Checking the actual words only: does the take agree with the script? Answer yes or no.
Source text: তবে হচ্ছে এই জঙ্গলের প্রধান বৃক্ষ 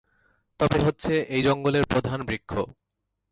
yes